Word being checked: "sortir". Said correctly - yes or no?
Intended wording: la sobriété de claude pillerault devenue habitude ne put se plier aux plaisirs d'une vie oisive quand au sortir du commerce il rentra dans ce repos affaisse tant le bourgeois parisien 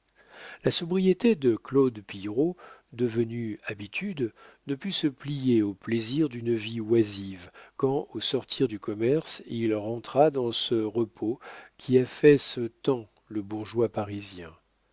yes